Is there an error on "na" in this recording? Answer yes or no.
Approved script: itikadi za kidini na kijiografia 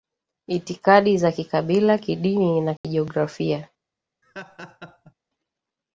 no